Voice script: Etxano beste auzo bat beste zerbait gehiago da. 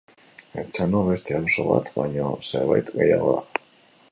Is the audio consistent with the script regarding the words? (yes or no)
no